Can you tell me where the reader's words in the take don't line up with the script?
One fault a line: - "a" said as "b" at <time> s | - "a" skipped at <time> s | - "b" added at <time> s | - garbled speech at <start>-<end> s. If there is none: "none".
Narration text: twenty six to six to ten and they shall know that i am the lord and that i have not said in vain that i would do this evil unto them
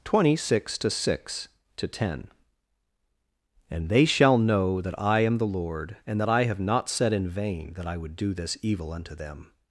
none